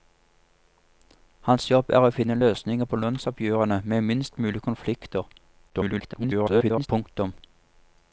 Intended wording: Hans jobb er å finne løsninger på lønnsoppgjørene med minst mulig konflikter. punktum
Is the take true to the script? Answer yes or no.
no